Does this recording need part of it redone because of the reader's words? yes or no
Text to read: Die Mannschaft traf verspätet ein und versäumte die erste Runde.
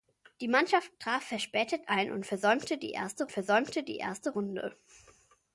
yes